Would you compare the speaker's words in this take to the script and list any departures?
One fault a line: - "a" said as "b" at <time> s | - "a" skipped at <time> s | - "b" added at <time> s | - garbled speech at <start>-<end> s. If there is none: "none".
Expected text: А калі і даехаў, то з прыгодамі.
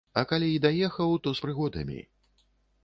none